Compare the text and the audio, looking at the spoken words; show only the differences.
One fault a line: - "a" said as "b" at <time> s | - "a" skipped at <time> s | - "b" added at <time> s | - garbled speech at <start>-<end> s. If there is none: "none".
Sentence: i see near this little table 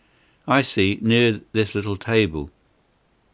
none